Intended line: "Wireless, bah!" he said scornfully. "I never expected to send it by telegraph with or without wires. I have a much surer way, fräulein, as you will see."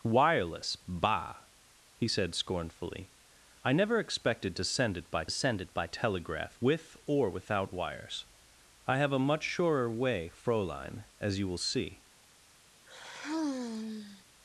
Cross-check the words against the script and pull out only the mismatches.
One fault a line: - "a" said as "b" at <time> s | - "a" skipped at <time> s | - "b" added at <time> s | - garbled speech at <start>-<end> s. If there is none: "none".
- "send it by" added at 5.3 s